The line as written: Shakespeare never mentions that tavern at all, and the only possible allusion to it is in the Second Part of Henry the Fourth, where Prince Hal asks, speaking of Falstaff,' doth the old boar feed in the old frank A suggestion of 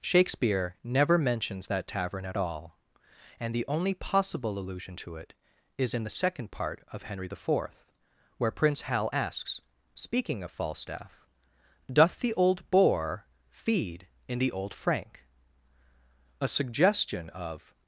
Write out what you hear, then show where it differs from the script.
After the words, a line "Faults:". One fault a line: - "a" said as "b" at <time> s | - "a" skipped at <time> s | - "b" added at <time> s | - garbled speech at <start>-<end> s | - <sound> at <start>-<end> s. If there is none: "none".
Shakespeare never mentions that tavern at all, and the only possible allusion to it is in the Second Part of Henry the Fourth, where Prince Hal asks, speaking of Falstaff,' doth the old boar feed in the old frank A suggestion of
Faults:
none